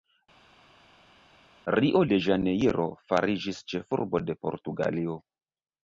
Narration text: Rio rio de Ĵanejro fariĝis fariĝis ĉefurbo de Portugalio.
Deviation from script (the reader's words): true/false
true